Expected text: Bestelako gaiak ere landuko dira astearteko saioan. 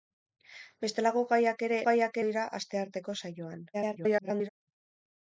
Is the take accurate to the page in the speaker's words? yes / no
no